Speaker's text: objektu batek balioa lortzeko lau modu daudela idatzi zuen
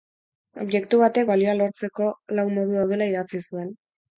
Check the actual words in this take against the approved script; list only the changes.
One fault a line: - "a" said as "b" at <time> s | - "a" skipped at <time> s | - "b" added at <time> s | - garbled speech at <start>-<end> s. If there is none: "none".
none